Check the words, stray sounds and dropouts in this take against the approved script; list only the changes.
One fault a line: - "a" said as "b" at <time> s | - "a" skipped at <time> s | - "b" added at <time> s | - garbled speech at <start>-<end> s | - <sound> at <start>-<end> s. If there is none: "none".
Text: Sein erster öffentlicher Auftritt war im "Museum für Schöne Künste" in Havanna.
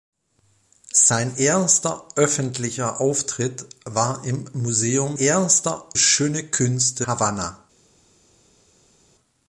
- "für" said as "erster" at 5.2 s
- "in" skipped at 7.0 s